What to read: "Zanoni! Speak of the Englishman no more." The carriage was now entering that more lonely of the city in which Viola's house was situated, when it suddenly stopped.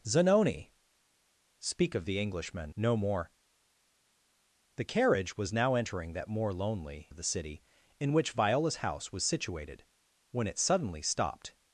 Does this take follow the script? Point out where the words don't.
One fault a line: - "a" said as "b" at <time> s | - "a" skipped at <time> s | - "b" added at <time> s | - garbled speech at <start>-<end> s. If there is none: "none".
none